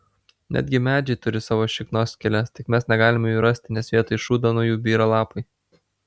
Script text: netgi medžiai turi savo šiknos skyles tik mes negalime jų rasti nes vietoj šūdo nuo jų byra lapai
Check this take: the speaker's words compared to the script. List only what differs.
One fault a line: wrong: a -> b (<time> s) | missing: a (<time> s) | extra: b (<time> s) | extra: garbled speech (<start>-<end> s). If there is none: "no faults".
no faults